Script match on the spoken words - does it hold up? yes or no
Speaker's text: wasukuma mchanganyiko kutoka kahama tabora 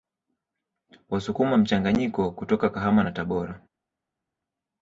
no